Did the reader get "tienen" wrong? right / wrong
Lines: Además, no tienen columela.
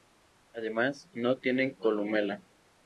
right